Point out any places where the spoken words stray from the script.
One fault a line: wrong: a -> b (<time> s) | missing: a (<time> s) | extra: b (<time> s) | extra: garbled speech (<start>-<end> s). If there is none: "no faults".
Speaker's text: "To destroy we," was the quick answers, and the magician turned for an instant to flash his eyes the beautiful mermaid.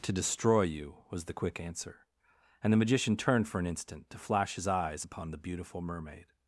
wrong: we -> you (0.6 s)
wrong: answers -> answer (1.6 s)
extra: upon (5.0 s)